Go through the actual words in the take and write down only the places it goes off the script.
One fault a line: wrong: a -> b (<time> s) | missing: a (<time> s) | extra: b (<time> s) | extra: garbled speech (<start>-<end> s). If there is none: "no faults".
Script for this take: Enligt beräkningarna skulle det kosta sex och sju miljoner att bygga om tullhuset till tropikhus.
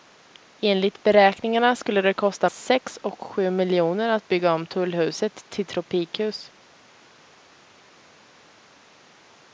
no faults